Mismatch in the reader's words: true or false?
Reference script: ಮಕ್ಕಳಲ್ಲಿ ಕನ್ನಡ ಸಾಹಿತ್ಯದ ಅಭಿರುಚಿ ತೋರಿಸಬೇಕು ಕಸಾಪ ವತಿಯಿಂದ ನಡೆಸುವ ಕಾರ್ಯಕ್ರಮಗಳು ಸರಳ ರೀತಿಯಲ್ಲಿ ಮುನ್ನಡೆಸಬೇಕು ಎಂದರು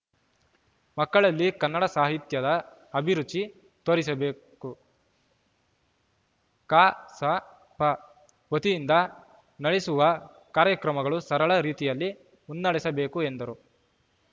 false